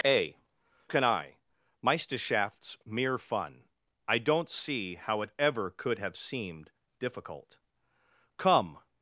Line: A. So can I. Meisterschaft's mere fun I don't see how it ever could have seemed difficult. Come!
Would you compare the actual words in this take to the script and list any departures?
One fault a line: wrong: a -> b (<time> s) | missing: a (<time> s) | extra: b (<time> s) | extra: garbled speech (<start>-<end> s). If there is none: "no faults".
missing: So (0.4 s)